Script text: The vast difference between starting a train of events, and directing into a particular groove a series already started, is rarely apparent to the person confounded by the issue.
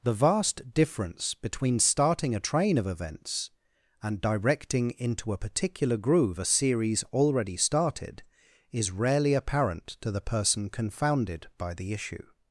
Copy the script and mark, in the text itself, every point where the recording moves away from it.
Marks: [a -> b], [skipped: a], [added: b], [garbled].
The vast difference between starting a train of events, and directing into a particular groove a series already started, is rarely apparent to the person confounded by the issue.